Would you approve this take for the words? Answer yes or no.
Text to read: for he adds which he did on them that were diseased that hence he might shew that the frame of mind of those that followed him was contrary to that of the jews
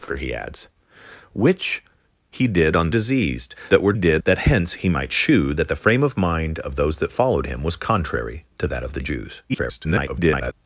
no